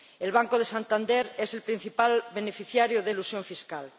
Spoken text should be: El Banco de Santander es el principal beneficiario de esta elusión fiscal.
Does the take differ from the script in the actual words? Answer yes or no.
yes